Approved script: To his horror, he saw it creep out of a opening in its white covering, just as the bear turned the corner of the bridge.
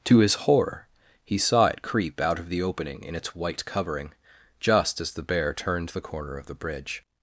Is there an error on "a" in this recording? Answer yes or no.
yes